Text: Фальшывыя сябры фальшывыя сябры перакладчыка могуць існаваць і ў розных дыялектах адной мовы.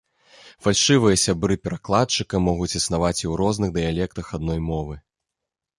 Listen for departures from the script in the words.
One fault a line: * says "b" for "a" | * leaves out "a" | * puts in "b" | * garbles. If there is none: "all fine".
* leaves out "фальшывыя сябры"